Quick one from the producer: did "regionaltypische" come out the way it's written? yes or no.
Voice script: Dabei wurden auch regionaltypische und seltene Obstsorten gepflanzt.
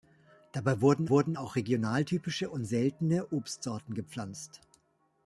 yes